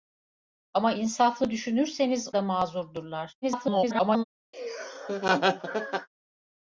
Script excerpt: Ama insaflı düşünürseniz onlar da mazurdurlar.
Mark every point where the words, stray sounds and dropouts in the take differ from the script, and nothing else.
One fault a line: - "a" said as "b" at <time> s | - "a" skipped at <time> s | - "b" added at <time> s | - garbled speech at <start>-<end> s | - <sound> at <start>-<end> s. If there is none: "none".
- "onlar" skipped at 2.3 s
- garbled speech at 3.4-4.2 s
- laugh at 4.5-6.1 s